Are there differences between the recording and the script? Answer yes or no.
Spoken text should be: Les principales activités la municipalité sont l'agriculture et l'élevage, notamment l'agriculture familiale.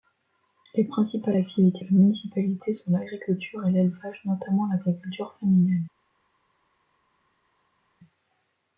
no